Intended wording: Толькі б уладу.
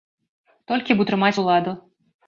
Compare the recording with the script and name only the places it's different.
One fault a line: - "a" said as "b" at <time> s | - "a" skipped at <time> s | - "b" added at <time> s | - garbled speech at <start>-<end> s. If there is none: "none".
- "утрымаць" added at 1.0 s